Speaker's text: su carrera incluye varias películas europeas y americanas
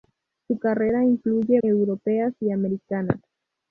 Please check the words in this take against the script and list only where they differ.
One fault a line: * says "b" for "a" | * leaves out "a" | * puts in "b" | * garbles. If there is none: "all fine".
* leaves out "varias películas"